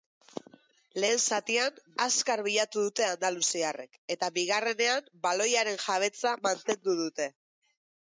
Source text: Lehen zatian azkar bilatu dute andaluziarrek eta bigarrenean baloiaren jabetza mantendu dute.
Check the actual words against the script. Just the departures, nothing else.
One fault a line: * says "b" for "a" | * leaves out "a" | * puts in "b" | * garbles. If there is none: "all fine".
all fine